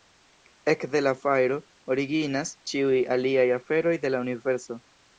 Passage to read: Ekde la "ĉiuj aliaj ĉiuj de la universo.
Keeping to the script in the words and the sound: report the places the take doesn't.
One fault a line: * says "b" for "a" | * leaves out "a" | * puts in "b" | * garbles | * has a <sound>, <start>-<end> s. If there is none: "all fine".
* puts in "fajro originas"
* says "aferoj" for "ĉiuj"